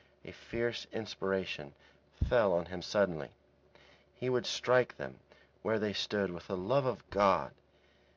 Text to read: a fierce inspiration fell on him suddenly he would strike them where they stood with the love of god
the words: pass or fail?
pass